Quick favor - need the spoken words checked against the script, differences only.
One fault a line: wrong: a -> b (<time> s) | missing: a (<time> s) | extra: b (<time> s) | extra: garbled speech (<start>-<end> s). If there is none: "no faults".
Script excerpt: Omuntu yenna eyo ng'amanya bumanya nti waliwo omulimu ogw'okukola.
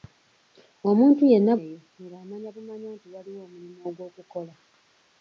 no faults